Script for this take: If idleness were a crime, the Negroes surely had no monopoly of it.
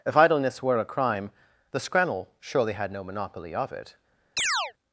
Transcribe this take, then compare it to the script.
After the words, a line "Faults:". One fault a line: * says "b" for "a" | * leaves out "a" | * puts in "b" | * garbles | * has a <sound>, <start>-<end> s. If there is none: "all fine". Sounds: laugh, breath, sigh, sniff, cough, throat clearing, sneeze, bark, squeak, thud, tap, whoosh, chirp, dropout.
If idleness were a crime, the Scrannel surely had no monopoly of it.
Faults:
* says "Scrannel" for "Negroes"
* has a chirp, 4.4-4.7 s